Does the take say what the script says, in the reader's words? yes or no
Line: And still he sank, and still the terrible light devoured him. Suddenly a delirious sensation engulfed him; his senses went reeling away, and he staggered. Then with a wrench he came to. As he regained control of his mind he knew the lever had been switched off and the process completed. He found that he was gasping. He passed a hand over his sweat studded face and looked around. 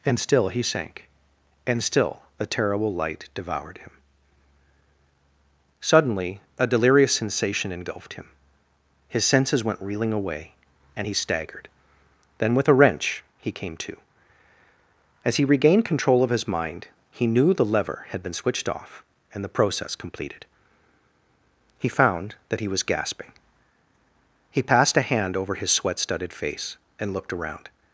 no